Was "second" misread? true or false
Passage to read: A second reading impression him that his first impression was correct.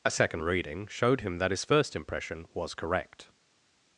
false